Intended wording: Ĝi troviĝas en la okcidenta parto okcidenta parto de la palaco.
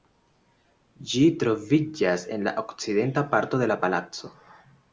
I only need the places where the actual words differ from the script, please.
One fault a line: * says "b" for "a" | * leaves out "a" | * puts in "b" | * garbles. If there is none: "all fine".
* leaves out "okcidenta parto"